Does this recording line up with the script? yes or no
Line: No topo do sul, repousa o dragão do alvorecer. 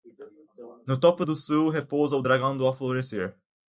yes